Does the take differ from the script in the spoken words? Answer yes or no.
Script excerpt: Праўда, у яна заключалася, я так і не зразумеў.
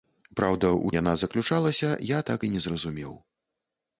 no